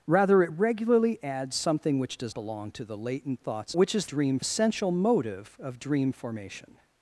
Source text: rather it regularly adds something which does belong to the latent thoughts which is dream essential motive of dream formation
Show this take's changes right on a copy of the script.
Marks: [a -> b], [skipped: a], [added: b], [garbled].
rather it regularly adds something which does belong to the latent thoughts which is dream essential motive of dream formation